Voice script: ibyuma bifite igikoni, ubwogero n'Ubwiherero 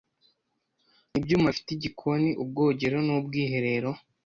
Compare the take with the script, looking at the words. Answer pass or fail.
pass